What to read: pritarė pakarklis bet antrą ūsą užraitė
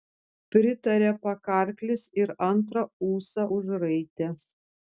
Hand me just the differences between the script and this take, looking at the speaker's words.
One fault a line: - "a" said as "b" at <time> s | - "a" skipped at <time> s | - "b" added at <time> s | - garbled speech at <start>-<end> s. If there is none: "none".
- "bet" said as "ir" at 2.2 s